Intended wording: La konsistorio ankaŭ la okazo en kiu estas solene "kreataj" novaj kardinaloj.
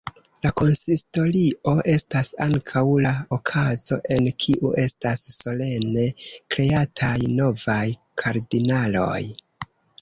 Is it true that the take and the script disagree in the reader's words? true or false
true